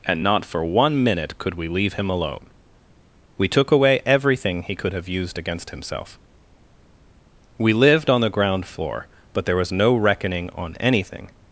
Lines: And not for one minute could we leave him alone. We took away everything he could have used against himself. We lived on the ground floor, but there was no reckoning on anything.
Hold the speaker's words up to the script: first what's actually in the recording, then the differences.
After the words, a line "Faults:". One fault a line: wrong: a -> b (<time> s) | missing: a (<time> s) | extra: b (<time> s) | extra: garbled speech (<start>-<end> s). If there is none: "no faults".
And not for one minute could we leave him alone. We took away everything he could have used against himself. We lived on the ground floor, but there was no reckoning on anything.
Faults:
no faults